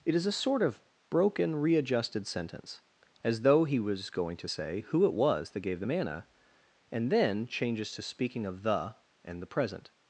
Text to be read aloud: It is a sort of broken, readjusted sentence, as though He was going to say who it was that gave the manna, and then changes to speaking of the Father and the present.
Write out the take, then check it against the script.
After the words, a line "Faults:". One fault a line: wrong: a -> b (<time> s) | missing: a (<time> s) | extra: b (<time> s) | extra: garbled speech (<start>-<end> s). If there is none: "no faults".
It is a sort of broken, readjusted sentence, as though He was going to say who it was that gave the manna, and then changes to speaking of the and the present.
Faults:
missing: Father (9.0 s)